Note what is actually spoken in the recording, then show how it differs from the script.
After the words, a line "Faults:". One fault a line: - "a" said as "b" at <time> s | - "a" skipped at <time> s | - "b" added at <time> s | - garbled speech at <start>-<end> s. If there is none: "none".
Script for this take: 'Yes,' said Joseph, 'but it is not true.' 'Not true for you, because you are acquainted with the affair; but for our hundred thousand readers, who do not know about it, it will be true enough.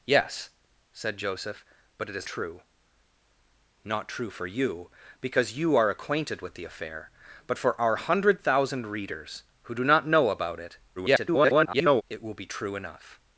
'Yes,' said Joseph, 'but it is true.' 'Not true for you, because you are acquainted with the affair; but for our hundred thousand readers, who do not know about it, [garbled] it will be true enough.
Faults:
- "not" skipped at 2.3 s
- garbled speech at 11.0-12.0 s